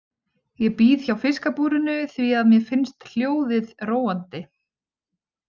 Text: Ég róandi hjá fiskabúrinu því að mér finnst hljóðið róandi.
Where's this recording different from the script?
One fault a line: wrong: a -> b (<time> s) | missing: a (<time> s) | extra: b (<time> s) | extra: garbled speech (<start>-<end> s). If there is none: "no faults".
wrong: róandi -> bíð (0.8 s)